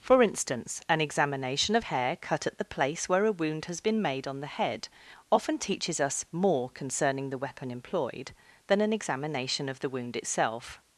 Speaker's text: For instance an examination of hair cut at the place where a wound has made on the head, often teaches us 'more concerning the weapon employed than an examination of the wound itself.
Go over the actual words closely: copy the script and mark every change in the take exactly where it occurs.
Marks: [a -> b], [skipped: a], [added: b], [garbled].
For instance an examination of hair cut at the place where a wound has [added: been] made on the head, often teaches us 'more concerning the weapon employed than an examination of the wound itself.